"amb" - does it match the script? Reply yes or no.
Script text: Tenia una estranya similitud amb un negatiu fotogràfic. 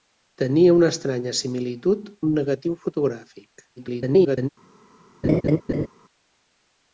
no